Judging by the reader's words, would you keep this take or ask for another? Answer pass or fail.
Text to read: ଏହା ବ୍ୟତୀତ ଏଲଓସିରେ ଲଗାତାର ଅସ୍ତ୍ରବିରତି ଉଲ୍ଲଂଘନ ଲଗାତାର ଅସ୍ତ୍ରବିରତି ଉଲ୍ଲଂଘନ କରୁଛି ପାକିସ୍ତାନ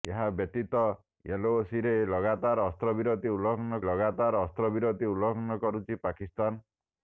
pass